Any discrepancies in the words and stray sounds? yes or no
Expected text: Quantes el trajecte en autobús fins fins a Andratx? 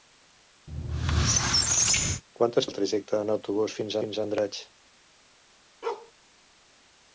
yes